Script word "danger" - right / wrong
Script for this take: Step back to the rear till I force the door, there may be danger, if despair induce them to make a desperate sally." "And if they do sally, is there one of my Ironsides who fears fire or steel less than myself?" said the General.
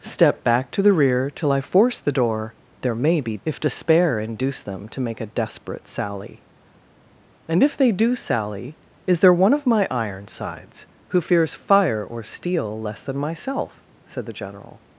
wrong